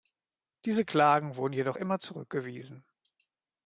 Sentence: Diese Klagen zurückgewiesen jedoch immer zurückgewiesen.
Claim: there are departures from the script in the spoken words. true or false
true